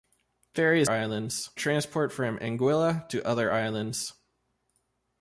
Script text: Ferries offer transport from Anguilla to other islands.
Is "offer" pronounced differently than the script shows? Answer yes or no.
yes